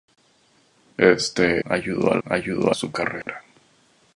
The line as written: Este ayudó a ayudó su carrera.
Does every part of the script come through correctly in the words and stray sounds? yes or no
no